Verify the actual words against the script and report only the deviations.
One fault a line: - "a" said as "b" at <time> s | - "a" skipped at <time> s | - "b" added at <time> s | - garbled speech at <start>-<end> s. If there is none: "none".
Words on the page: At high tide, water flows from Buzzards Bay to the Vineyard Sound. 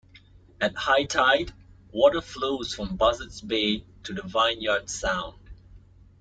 none